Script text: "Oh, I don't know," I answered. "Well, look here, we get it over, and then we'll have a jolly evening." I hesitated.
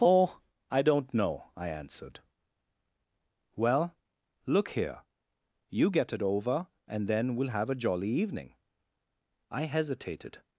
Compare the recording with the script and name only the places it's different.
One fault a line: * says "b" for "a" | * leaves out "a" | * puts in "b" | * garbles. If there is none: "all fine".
* says "you" for "we"